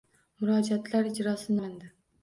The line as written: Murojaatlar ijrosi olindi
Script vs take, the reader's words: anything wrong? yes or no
no